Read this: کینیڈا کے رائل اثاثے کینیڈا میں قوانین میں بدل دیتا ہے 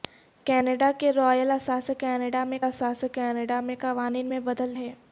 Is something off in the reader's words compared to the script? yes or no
yes